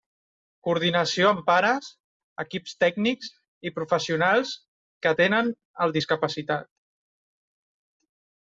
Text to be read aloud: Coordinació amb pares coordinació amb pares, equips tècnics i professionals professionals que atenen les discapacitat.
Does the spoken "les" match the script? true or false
false